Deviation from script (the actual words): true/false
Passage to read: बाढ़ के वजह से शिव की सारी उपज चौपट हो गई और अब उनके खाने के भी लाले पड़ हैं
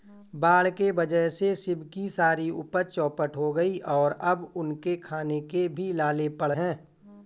false